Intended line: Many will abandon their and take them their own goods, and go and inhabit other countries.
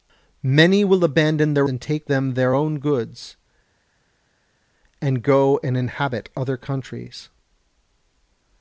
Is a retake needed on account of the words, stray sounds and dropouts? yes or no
no